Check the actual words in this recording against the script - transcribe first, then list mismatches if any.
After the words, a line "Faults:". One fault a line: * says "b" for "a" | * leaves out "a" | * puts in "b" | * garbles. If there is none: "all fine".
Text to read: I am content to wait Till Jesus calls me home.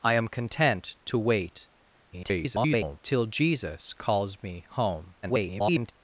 I am content to wait [garbled] Till Jesus calls me home. [garbled]
Faults:
* garbles
* garbles